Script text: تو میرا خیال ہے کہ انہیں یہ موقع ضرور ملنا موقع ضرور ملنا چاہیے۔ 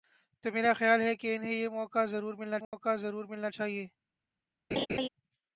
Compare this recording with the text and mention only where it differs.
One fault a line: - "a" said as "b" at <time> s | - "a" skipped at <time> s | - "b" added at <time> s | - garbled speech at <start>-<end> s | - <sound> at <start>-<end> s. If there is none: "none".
- dropout at 2.6-2.7 s
- laugh at 4.7-5.1 s